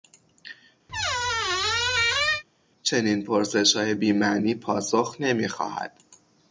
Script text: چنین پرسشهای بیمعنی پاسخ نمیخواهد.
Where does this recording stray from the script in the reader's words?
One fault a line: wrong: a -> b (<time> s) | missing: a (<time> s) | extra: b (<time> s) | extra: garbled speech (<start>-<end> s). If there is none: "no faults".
no faults